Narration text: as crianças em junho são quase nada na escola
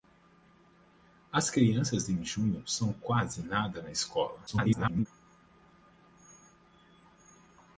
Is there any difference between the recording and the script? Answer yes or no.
yes